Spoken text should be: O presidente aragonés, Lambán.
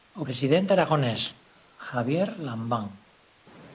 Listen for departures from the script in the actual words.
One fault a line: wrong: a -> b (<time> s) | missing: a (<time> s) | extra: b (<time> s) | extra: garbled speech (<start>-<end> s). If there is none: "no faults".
extra: Javier (1.9 s)